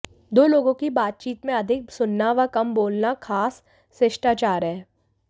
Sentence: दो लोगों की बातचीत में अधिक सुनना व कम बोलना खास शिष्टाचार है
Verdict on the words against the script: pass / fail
pass